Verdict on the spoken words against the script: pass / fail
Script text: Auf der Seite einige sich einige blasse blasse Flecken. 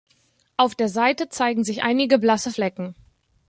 fail